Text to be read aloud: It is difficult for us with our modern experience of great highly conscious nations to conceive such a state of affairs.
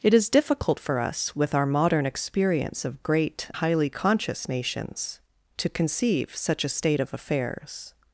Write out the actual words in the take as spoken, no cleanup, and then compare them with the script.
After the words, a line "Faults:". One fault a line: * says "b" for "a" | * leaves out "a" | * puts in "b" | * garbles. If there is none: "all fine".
It is difficult for us with our modern experience of great highly conscious nations to conceive such a state of affairs.
Faults:
all fine